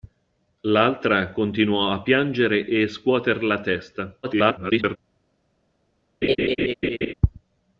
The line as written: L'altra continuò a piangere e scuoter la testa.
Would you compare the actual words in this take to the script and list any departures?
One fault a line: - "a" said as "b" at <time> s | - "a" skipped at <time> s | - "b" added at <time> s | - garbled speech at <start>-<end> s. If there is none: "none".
- garbled speech at 4.2-5.0 s